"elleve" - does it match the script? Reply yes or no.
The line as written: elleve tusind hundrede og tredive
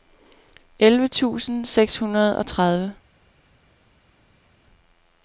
yes